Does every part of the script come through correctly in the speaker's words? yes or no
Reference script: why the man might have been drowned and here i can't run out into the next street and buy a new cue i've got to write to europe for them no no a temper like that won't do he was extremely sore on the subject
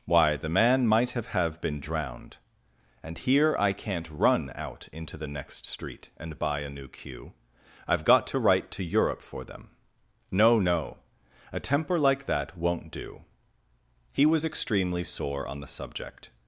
no